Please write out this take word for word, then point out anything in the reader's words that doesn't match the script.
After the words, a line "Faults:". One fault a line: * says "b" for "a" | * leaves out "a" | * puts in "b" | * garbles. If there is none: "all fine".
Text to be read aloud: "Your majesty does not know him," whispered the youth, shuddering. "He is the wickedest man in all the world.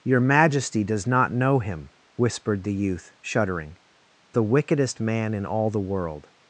"Your majesty does not know him," whispered the youth, shuddering. "The wickedest man in all the world.
Faults:
* leaves out "He is"